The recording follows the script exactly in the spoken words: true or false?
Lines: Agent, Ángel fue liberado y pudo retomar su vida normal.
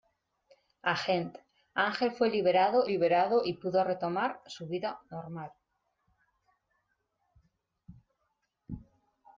false